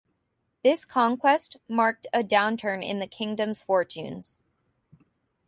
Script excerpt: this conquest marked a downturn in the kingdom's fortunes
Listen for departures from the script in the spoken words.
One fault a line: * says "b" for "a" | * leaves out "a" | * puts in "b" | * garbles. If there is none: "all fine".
all fine